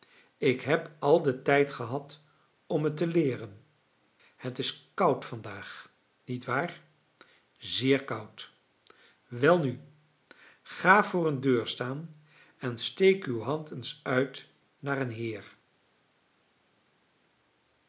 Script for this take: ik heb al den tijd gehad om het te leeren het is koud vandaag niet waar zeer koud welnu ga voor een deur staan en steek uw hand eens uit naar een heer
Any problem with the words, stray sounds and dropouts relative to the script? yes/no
no